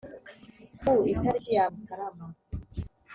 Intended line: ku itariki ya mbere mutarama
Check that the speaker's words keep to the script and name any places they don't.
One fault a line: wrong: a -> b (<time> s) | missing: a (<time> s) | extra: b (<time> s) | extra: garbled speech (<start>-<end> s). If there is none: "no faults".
missing: mbere (1.6 s)